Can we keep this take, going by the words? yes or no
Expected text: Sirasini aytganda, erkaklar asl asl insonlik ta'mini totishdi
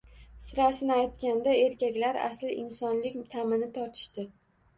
no